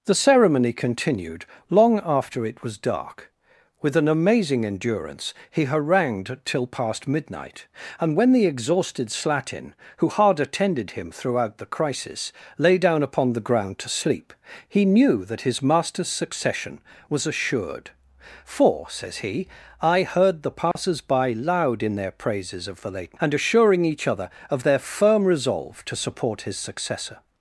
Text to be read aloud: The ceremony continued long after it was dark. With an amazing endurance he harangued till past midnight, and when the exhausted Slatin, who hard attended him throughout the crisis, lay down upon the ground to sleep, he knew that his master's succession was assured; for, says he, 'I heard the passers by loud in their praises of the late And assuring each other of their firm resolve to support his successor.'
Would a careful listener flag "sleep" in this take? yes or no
no